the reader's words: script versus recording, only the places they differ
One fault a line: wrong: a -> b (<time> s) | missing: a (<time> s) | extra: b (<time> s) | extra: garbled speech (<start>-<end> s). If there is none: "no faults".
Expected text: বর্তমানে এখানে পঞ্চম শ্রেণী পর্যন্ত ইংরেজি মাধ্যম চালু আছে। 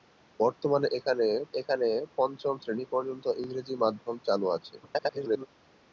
extra: এখানে (1.6 s)
extra: garbled speech (4.8-5.5 s)